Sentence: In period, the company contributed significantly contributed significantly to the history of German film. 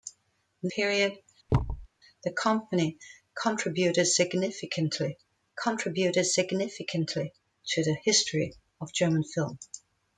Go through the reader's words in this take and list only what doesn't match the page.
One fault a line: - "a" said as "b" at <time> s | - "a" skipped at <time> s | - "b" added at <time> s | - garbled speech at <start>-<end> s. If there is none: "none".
none